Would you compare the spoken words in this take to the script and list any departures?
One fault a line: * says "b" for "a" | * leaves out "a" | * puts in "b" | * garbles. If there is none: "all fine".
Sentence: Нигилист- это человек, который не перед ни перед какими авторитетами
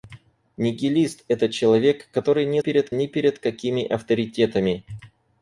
all fine